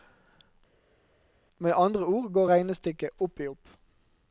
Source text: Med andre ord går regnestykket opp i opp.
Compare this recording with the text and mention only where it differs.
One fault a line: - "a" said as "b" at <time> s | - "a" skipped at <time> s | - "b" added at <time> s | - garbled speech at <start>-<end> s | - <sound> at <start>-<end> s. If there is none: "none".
none